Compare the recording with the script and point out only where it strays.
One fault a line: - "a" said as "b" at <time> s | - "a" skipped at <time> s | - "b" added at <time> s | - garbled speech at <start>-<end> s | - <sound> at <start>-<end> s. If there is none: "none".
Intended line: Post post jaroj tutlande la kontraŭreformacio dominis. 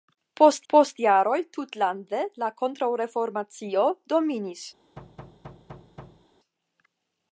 - thud at 5.0-6.3 s